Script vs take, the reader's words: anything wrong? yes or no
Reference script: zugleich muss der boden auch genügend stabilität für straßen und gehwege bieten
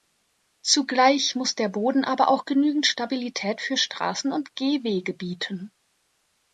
yes